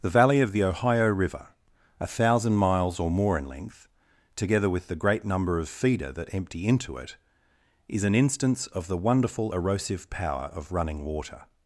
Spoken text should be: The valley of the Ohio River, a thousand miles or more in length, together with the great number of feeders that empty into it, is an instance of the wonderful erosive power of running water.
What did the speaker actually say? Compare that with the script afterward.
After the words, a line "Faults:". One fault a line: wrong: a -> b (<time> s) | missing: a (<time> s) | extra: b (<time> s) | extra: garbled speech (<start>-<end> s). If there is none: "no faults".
The valley of the Ohio River, a thousand miles or more in length, together with the great number of feeder that empty into it, is an instance of the wonderful erosive power of running water.
Faults:
wrong: feeders -> feeder (5.7 s)